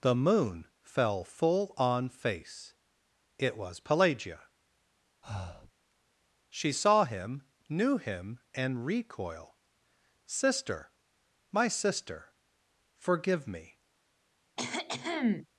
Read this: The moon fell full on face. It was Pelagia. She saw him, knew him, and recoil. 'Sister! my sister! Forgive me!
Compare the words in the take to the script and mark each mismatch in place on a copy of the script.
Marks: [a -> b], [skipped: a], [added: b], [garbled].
The moon fell full on face. It was Pelagia. She saw him, knew him, and recoil. 'Sister! my sister! Forgive me!